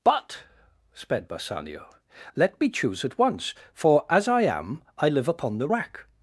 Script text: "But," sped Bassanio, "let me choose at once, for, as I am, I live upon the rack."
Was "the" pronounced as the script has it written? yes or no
yes